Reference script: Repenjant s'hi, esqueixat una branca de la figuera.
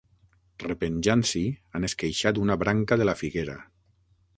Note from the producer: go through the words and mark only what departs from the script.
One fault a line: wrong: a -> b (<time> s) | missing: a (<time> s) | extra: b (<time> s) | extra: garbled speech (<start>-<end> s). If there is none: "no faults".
extra: han (1.8 s)